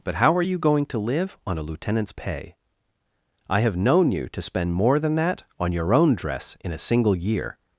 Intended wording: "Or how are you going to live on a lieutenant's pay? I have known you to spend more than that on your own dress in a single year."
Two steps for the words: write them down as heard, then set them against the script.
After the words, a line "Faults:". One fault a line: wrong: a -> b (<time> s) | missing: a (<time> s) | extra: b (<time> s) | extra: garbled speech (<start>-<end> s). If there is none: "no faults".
"But how are you going to live on a lieutenant's pay? I have known you to spend more than that on your own dress in a single year."
Faults:
wrong: Or -> But (0.0 s)